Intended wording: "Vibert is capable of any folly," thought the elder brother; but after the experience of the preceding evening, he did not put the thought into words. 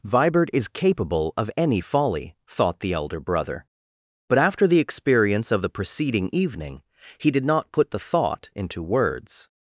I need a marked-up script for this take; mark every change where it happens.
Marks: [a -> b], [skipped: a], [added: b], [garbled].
"Vibert is capable of any folly," thought the elder brother; but after the experience of the preceding evening, he did not put the thought into words.